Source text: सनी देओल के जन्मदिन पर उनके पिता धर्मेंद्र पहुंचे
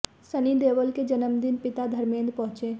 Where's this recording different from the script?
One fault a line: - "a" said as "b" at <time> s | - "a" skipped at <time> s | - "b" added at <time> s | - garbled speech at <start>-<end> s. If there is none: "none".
- "पर उनके" skipped at 1.6 s